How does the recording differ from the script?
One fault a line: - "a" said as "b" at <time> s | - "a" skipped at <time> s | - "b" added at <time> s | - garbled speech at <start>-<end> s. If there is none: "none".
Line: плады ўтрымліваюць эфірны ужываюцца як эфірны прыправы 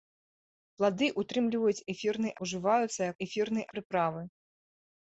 none